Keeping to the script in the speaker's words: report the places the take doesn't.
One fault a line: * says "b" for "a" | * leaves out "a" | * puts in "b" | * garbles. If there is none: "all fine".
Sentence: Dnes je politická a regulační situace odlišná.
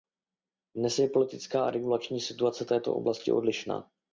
* puts in "této oblasti"